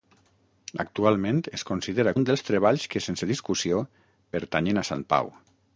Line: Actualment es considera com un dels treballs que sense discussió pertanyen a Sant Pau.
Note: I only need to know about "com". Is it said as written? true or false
false